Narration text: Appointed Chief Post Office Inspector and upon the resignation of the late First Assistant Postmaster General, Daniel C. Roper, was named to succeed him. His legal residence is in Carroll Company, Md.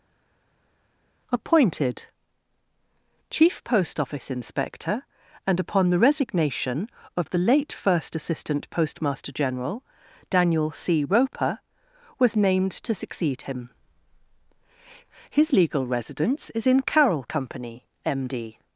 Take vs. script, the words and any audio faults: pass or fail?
pass